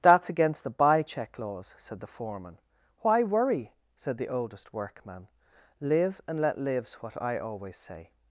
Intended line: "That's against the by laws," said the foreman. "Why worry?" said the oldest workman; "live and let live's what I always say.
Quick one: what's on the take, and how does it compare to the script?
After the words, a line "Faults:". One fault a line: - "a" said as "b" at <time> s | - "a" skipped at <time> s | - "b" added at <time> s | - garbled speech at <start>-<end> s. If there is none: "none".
"That's against the buy check laws," said the foreman. "Why worry?" said the oldest workman; "live and let live's what I always say.
Faults:
- "by" said as "buy check" at 0.7 s